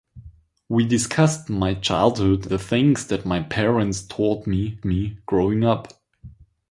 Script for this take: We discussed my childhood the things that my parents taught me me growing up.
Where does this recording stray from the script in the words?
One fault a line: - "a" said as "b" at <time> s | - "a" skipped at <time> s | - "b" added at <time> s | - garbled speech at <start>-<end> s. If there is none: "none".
none